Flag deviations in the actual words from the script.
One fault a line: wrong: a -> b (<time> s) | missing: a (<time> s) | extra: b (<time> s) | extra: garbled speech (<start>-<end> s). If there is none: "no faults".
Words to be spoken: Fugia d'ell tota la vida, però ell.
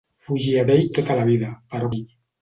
no faults